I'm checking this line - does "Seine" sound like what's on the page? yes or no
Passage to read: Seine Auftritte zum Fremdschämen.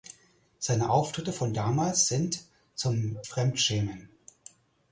yes